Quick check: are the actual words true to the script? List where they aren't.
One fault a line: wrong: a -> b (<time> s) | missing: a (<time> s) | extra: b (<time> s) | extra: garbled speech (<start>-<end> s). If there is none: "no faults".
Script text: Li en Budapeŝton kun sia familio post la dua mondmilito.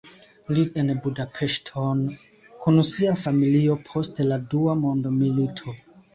no faults